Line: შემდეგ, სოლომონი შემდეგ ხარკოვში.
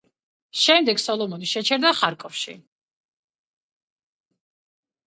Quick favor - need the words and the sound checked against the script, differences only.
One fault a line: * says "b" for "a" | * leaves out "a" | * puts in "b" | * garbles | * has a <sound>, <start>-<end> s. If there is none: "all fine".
* says "შეჩერდა" for "შემდეგ"